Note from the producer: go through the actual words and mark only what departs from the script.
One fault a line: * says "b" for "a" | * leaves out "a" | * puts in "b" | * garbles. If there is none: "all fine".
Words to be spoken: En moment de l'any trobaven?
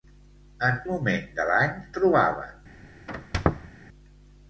all fine